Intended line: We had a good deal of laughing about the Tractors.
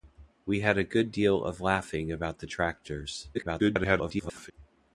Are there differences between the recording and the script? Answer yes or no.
yes